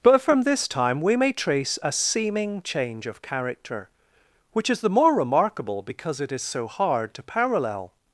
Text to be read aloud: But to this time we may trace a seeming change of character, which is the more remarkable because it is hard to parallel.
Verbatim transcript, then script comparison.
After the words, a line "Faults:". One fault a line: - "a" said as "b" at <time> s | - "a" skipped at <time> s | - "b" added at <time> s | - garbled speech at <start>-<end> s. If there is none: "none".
But from this time we may trace a seeming change of character, which is the more remarkable because it is so hard to parallel.
Faults:
- "to" said as "from" at 0.2 s
- "so" added at 6.4 s